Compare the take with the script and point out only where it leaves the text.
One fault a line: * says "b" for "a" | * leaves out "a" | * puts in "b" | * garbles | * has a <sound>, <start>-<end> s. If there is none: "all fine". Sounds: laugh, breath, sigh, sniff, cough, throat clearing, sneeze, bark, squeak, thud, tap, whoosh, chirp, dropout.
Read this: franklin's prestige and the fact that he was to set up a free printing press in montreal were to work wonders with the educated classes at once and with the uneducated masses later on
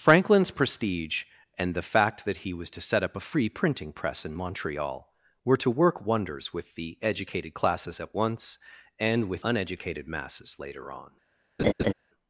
* leaves out "the"
* has a laugh, 11.6-11.9 s